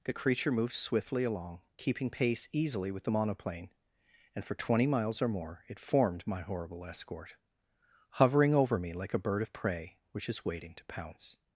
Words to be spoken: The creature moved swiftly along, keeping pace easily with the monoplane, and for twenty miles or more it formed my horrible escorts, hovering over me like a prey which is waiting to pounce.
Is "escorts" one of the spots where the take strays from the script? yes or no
yes